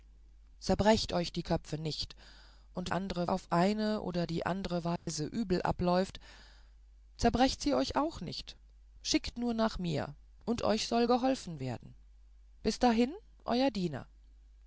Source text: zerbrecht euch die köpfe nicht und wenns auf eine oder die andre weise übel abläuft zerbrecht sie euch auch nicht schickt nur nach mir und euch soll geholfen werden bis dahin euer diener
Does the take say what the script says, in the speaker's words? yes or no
no